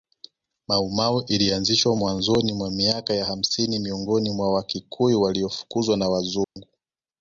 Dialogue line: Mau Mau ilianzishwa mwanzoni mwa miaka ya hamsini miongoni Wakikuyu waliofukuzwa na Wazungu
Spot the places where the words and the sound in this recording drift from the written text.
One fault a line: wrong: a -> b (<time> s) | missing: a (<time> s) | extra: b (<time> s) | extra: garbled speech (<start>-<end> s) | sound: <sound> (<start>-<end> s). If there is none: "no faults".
extra: mwa (4.3 s)
sound: dropout (6.4-6.6 s)